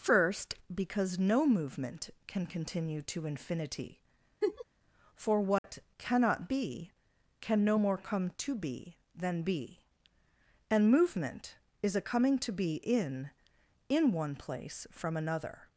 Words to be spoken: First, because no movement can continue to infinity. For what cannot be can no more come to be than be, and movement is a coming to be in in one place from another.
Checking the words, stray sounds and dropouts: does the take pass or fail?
fail